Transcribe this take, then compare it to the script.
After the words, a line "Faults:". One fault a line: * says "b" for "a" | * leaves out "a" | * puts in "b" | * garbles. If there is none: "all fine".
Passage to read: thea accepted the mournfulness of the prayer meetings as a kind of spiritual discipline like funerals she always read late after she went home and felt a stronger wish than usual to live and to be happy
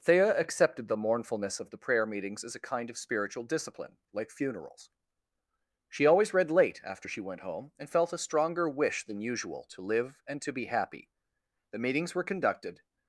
thea accepted the mournfulness of the prayer meetings as a kind of spiritual discipline like funerals she always read late after she went home and felt a stronger wish than usual to live and to be happy the meetings were conducted
Faults:
* puts in "the meetings were conducted"